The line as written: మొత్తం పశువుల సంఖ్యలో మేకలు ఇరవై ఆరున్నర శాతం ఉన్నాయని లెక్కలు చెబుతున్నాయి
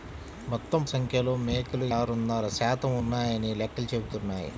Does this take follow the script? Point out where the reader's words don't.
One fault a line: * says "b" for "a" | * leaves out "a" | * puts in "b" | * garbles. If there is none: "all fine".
* leaves out "పశువుల"
* leaves out "ఇరవై"